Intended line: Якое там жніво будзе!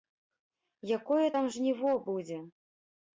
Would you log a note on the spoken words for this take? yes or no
no